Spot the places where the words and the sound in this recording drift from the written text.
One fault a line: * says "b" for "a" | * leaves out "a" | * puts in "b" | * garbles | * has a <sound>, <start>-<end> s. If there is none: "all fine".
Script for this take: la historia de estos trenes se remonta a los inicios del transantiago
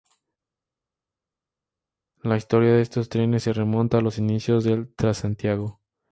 all fine